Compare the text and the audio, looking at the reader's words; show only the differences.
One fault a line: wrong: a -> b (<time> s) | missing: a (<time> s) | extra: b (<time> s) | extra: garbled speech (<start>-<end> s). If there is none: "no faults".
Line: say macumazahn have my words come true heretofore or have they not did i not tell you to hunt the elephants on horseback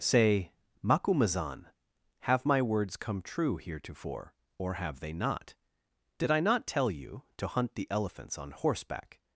no faults